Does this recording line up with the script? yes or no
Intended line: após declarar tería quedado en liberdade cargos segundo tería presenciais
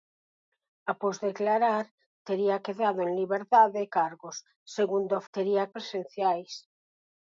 yes